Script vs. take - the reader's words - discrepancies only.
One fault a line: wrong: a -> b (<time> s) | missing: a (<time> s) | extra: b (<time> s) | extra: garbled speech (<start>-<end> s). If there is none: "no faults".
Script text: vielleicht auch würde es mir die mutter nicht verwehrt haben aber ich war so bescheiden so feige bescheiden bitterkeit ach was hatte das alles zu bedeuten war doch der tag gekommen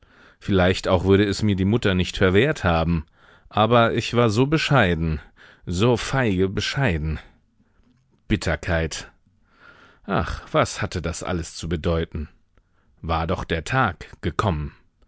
no faults